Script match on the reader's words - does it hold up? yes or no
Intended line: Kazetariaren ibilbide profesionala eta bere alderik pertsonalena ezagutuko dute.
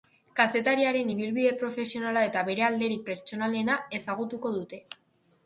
yes